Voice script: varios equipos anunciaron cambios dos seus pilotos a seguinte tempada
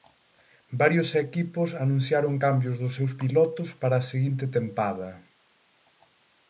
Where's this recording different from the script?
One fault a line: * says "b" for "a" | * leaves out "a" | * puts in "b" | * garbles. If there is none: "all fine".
* puts in "para"